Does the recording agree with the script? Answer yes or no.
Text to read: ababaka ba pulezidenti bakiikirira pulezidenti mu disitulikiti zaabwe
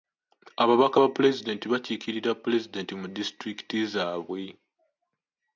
yes